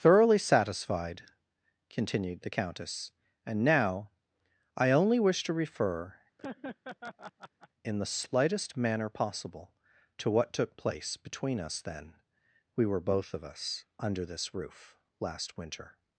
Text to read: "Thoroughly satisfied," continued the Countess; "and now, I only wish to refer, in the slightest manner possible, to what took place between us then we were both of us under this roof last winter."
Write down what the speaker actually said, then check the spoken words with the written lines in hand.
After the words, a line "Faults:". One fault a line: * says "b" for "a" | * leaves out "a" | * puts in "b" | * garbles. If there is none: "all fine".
"Thoroughly satisfied," continued the Countess; "and now, I only wish to refer, in the slightest manner possible, to what took place between us then we were both of us under this roof last winter."
Faults:
all fine